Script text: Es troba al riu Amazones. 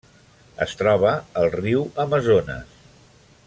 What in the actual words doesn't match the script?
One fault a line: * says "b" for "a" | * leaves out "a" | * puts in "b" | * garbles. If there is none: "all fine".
all fine